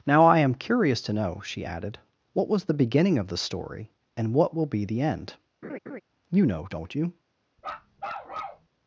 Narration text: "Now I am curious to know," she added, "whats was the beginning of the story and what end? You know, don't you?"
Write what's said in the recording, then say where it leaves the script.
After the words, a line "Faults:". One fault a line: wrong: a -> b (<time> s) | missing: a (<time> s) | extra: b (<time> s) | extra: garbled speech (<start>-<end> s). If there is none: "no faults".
"Now I am curious to know," she added, "what was the beginning of the story and what will be the end? You know, don't you?"
Faults:
wrong: whats -> what (2.3 s)
extra: will be the (4.5 s)